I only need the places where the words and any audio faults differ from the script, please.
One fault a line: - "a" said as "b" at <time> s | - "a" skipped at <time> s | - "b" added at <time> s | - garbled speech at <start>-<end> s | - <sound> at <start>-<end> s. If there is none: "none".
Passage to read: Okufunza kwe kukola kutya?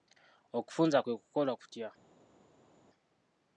none